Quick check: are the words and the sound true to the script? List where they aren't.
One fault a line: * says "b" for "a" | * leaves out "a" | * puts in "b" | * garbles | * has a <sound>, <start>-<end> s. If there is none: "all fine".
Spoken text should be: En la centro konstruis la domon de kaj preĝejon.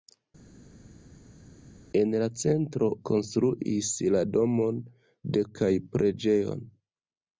all fine